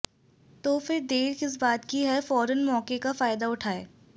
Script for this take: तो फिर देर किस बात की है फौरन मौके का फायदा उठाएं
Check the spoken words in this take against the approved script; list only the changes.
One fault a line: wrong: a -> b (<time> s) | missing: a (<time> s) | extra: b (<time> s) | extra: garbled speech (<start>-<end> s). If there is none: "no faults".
no faults